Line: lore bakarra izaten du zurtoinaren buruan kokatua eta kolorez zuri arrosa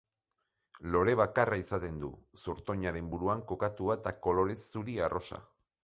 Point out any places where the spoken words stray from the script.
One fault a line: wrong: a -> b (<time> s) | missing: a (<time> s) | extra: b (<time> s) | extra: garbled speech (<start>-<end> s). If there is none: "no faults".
no faults